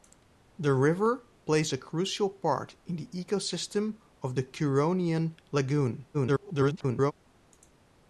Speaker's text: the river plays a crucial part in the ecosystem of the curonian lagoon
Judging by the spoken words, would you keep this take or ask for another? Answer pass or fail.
fail